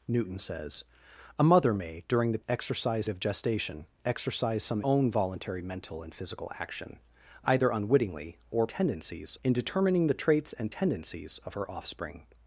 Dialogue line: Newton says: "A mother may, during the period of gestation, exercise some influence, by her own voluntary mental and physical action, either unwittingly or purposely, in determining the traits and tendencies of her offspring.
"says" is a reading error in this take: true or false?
false